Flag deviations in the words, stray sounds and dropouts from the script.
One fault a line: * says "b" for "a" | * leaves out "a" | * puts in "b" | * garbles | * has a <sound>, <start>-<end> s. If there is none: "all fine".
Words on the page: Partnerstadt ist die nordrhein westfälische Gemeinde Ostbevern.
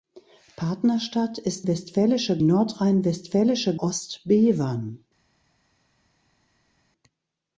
* says "westfälische" for "die"
* leaves out "Gemeinde"